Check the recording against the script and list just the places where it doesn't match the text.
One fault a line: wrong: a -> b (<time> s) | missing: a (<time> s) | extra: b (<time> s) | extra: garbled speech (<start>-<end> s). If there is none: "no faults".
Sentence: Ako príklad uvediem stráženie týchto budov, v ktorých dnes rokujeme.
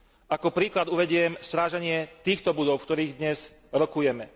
no faults